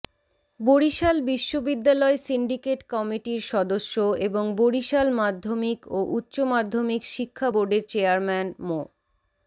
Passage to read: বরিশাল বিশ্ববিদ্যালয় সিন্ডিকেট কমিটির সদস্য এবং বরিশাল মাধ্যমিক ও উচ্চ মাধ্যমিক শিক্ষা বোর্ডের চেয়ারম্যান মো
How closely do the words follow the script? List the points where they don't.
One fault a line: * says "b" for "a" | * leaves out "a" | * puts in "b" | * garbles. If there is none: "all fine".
all fine